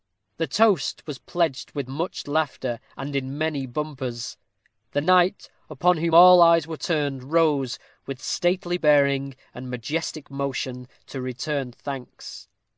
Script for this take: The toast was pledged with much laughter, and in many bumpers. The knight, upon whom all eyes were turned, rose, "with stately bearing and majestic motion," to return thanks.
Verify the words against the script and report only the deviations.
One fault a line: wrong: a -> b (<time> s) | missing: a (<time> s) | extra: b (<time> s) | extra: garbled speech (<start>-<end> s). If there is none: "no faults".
no faults